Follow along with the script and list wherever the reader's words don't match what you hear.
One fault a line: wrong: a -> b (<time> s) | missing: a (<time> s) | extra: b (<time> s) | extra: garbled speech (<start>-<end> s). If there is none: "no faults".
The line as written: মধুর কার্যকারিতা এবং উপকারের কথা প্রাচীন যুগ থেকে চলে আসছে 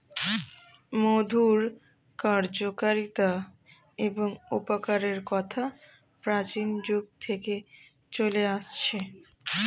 no faults